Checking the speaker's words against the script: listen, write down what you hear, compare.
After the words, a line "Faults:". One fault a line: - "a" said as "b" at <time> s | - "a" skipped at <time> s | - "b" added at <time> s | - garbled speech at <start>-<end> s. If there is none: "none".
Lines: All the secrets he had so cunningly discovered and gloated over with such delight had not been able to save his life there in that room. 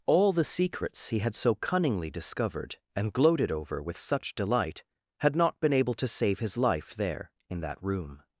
All the secrets he had so cunningly discovered and gloated over with such delight had not been able to save his life there in that room.
Faults:
none